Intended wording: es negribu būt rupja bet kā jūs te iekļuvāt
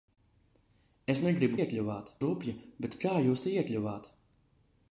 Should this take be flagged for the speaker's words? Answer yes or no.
yes